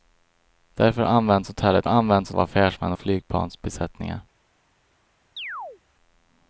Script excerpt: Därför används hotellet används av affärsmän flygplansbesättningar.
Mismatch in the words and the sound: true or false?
true